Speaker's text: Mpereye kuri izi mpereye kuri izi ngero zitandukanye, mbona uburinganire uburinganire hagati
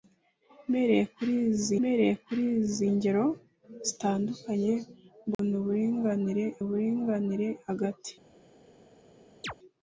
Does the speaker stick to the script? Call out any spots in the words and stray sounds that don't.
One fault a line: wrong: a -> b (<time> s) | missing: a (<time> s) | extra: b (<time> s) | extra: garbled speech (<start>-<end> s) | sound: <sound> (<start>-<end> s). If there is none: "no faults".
sound: dropout (5.3-5.4 s)
sound: chirp (9.4-9.5 s)